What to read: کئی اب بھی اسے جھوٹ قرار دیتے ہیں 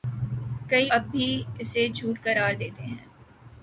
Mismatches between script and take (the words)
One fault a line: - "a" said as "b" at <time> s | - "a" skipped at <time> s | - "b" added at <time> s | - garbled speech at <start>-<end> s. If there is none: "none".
none